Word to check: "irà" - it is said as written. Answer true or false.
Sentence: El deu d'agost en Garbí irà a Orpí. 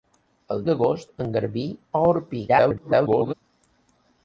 false